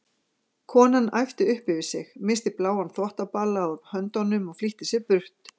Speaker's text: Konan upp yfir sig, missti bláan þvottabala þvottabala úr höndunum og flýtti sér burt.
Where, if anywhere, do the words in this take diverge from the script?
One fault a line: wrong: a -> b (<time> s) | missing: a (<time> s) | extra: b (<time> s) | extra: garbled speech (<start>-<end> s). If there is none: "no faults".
extra: æpti (1.2 s)
missing: þvottabala (3.7 s)